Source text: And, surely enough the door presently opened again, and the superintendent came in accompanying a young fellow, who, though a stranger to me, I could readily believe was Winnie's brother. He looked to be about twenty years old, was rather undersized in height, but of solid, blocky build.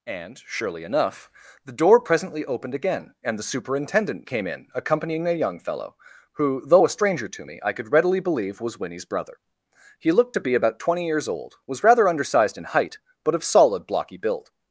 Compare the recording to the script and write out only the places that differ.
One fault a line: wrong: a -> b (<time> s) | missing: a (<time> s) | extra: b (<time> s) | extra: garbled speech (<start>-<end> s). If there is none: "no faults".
no faults